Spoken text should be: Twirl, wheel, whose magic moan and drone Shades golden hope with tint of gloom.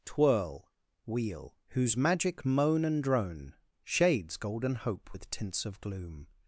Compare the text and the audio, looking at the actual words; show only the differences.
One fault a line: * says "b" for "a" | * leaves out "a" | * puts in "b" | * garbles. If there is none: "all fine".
* says "tints" for "tint"